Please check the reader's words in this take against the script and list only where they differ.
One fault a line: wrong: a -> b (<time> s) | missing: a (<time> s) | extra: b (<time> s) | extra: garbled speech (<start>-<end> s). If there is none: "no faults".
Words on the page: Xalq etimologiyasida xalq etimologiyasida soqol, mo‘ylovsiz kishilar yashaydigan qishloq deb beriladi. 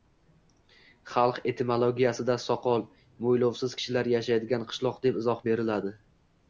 missing: xalq etimologiyasida (2.4 s)
extra: izoh (5.3 s)